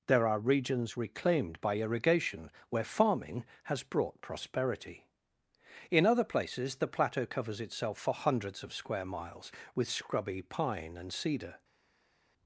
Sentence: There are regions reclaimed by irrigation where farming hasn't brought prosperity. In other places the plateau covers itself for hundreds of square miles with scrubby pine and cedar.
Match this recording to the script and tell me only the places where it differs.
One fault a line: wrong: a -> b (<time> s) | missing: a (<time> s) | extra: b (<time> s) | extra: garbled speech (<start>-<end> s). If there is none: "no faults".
wrong: hasn't -> has (3.6 s)